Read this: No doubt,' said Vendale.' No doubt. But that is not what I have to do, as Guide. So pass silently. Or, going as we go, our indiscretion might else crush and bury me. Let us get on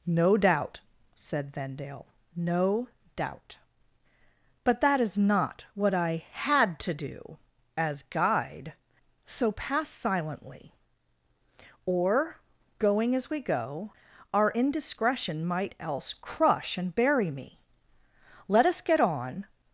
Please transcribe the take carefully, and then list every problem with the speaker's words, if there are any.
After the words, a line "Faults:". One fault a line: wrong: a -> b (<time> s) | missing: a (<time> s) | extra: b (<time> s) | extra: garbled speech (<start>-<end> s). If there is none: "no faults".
No doubt,' said Vendale.' No doubt. But that is not what I had to do, as Guide. So pass silently. Or, going as we go, our indiscretion might else crush and bury me. Let us get on
Faults:
wrong: have -> had (6.3 s)